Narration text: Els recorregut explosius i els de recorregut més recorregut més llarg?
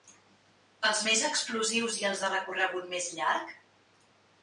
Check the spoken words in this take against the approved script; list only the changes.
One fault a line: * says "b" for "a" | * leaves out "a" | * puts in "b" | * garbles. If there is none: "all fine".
* says "més" for "recorregut"
* leaves out "recorregut més"